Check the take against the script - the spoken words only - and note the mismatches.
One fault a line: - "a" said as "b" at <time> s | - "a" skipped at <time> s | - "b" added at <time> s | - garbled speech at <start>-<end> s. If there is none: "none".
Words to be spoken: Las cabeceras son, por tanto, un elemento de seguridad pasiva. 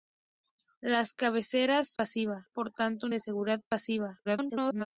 - "son" said as "pasiva" at 2.0 s
- "elemento" skipped at 3.1 s
- garbled speech at 4.2-4.9 s